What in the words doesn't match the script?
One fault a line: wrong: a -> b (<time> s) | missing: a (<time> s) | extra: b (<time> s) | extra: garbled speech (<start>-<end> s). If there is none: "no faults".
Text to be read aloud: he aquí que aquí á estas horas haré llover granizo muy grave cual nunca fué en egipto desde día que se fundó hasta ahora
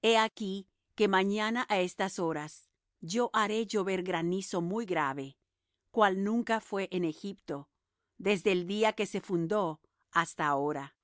wrong: aquí -> mañana (1.1 s)
extra: yo (3.0 s)
extra: el (8.5 s)